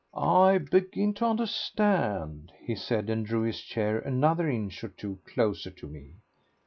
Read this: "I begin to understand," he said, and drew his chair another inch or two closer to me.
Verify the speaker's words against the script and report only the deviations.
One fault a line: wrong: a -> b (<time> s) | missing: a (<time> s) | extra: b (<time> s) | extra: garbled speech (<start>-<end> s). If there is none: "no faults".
no faults